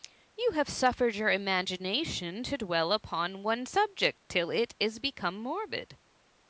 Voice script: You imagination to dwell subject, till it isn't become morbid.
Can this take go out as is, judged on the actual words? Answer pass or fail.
fail